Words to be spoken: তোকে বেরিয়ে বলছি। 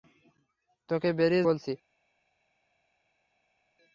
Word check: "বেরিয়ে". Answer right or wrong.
right